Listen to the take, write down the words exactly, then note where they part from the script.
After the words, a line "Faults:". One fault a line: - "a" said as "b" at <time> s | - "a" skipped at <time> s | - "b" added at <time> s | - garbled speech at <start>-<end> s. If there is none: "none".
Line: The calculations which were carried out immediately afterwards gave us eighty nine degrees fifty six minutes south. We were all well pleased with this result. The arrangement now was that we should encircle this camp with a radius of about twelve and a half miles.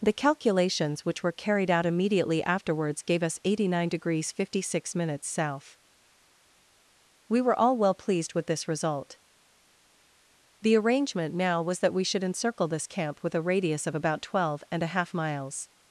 The calculations which were carried out immediately afterwards gave us eighty nine degrees fifty six minutes south. We were all well pleased with this result. The arrangement now was that we should encircle this camp with a radius of about twelve and a half miles.
Faults:
none